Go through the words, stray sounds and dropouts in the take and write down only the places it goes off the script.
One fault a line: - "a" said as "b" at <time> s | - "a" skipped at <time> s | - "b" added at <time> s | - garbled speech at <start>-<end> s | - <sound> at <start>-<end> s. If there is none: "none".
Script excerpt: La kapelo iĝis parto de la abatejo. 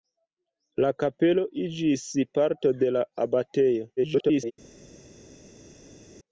- garbled speech at 4.0-4.5 s